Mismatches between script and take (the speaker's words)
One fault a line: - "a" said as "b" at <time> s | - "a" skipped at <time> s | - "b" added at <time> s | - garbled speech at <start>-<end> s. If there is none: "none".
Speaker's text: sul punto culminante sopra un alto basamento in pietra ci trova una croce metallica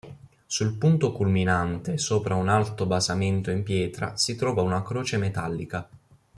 - "ci" said as "si" at 4.2 s